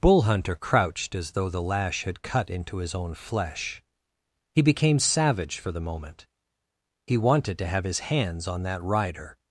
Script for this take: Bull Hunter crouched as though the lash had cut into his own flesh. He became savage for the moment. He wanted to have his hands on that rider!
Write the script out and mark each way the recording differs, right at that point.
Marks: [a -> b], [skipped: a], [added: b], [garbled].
Bull Hunter crouched as though the lash had cut into his own flesh. He became savage for the moment. He wanted to have his hands on that rider!